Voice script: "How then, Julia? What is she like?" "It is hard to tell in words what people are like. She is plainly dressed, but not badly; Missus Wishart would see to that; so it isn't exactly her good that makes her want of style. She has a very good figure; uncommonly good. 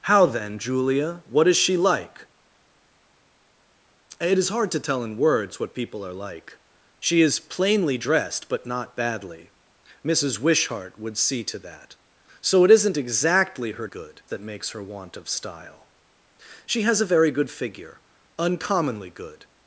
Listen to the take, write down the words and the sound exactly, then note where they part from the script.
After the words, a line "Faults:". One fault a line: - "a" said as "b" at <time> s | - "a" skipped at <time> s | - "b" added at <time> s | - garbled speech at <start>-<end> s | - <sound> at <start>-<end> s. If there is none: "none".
"How then, Julia? What is she like?" "It is hard to tell in words what people are like. She is plainly dressed, but not badly; Missus Wishart would see to that; so it isn't exactly her good that makes her want of style. She has a very good figure; uncommonly good.
Faults:
none